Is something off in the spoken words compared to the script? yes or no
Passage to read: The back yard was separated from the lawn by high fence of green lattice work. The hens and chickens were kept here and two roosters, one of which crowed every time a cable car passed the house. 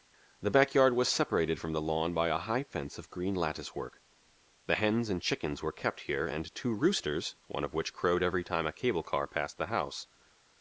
yes